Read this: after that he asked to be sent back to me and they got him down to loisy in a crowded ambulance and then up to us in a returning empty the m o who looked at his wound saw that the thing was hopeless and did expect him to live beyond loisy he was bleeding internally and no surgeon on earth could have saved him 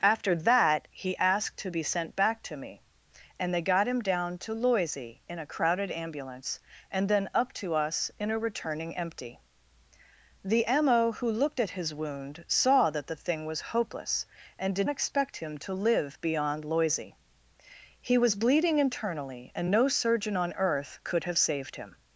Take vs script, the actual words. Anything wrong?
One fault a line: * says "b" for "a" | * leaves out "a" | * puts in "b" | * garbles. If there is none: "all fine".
all fine